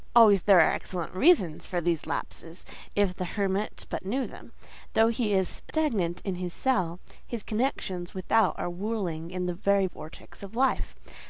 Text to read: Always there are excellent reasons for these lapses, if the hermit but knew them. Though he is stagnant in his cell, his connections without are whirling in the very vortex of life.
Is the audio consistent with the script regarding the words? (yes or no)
yes